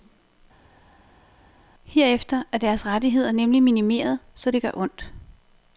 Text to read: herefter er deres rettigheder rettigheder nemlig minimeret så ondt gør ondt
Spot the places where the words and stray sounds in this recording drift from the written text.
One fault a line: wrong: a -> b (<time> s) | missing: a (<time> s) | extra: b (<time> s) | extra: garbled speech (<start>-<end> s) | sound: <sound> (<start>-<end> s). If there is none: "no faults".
missing: rettigheder (3.3 s)
wrong: ondt -> det (4.5 s)